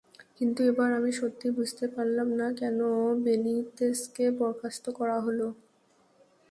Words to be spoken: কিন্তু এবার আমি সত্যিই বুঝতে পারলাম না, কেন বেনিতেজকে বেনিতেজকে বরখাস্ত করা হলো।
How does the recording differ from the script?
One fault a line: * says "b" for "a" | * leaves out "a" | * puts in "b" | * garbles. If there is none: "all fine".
* leaves out "বেনিতেজকে"